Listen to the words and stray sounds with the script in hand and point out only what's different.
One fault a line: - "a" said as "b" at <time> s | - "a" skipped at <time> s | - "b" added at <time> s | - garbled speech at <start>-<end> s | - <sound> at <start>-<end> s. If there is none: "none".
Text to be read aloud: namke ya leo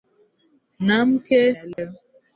- dropout at 1.7-1.8 s